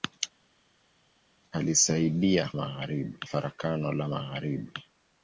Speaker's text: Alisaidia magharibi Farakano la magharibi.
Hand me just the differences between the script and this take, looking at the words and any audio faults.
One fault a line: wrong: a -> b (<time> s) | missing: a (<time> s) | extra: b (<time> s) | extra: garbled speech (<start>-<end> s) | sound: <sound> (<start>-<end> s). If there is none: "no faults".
no faults